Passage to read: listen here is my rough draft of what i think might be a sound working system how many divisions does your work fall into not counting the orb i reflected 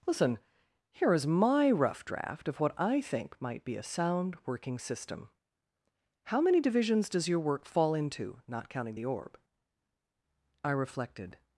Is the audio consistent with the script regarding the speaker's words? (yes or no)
yes